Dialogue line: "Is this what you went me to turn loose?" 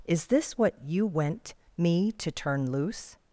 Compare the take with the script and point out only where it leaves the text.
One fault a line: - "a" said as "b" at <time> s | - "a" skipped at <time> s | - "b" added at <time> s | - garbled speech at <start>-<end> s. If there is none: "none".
none